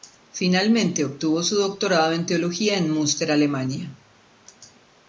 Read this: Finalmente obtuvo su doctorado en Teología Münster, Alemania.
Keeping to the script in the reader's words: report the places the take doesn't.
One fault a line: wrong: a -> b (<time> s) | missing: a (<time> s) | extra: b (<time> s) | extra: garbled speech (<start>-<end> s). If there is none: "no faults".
extra: en (2.8 s)